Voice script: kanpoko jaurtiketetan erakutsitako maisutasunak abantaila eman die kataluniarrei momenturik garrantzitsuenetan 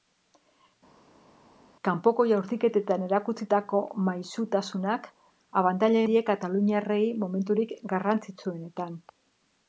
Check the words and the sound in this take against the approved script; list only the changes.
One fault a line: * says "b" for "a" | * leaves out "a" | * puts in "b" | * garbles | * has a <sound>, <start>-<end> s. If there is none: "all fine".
* leaves out "eman"